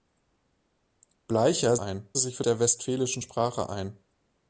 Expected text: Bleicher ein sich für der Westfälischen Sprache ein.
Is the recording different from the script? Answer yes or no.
no